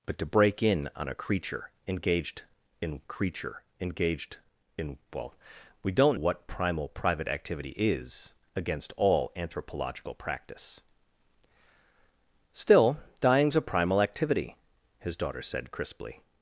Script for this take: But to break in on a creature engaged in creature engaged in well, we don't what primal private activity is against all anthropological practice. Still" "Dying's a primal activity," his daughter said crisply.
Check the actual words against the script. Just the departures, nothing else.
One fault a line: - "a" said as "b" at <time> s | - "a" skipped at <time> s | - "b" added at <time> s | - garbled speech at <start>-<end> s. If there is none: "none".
none